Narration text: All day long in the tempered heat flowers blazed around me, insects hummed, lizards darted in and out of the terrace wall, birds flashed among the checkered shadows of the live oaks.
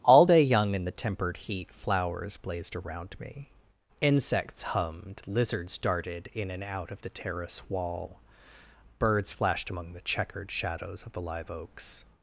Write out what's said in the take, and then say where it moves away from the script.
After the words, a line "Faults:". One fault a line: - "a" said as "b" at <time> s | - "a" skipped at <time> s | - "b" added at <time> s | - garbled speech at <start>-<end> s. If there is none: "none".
All day young in the tempered heat flowers blazed around me, insects hummed, lizards darted in and out of the terrace wall, birds flashed among the checkered shadows of the live oaks.
Faults:
- "long" said as "young" at 0.4 s